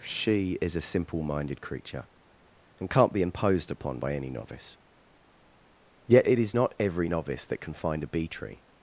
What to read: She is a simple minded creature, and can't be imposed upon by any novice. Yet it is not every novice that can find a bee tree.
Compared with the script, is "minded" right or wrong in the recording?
right